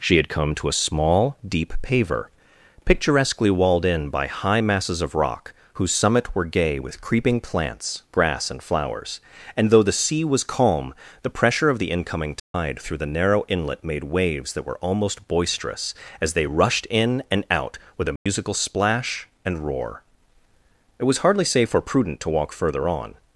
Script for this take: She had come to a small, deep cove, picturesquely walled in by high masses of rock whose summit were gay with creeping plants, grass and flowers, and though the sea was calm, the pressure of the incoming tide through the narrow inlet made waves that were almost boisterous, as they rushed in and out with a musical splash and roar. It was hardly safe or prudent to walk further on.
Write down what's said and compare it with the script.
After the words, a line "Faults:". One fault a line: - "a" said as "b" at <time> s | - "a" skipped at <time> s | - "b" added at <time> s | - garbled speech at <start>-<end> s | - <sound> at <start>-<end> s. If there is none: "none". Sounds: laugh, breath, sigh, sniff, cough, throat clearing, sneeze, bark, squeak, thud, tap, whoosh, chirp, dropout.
She had come to a small, deep paver, picturesquely walled in by high masses of rock whose summit were gay with creeping plants, grass and flowers, and though the sea was calm, the pressure of the incoming tide through the narrow inlet made waves that were almost boisterous, as they rushed in and out with a musical splash and roar. It was hardly safe or prudent to walk further on.
Faults:
- "cove" said as "paver" at 1.8 s
- dropout at 12.4-12.5 s
- dropout at 18.2-18.3 s